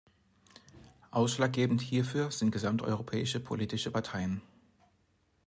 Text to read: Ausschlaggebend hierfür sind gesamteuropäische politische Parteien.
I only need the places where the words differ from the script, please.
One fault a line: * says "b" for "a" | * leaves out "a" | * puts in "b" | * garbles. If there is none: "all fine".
all fine